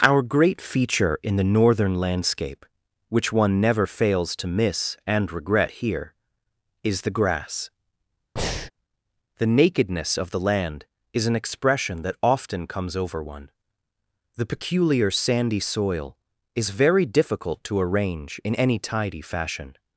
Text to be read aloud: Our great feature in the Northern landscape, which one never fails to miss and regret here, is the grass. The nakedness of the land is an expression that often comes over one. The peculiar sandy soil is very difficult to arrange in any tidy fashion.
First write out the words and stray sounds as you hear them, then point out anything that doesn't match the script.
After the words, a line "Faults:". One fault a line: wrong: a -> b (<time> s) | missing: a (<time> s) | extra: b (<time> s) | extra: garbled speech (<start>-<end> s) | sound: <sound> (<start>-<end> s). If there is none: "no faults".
Our great feature in the Northern landscape, which one never fails to miss and regret here, is the grass. The nakedness of the land is an expression that often comes over one. The peculiar sandy soil is very difficult to arrange in any tidy fashion.
Faults:
sound: breath (8.4-8.7 s)